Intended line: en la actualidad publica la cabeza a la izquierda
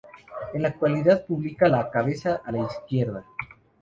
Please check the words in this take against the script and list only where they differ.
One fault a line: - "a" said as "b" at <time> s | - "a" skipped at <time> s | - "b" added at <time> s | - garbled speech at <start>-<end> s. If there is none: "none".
none